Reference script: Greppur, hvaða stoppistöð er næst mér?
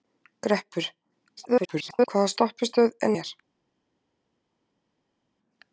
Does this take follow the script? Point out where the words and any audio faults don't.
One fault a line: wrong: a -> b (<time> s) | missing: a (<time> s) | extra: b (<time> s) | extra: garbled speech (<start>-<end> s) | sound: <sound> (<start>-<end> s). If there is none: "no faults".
extra: garbled speech (1.4-2.1 s)
missing: næst (3.1 s)